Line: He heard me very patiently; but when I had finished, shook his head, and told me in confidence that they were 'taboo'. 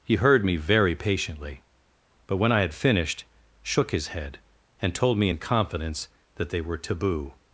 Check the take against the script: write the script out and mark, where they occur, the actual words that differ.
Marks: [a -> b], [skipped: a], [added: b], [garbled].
He heard me very patiently; but when I had finished, shook his head, and told me in confidence that they were 'taboo'.